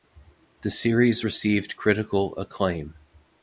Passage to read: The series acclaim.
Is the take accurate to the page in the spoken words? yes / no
no